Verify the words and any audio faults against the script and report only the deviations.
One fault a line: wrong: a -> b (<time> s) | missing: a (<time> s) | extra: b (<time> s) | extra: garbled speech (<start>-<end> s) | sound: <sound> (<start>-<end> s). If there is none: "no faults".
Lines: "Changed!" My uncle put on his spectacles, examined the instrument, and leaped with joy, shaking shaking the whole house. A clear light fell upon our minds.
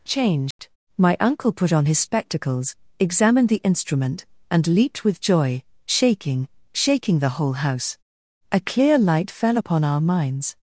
sound: dropout (0.5-0.6 s)